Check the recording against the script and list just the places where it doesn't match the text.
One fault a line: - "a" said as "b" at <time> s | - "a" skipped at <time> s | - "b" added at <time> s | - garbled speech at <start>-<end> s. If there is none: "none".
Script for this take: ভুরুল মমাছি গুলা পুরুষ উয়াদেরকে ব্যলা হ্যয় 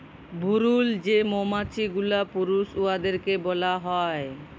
- "যে" added at 1.1 s